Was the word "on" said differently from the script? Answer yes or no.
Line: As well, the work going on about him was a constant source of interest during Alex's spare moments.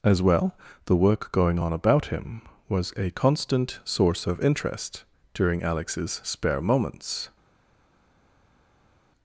no